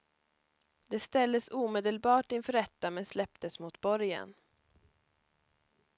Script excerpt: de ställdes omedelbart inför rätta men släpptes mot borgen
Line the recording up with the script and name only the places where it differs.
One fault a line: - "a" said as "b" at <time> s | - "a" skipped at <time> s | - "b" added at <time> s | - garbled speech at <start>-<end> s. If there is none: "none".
none